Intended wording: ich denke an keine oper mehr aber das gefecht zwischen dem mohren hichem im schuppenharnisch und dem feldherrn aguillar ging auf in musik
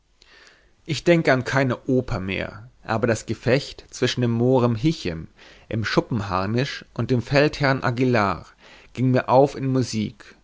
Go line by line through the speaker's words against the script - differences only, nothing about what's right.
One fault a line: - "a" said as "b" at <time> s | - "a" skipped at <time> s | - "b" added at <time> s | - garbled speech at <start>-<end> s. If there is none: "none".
- "mir" added at 9.1 s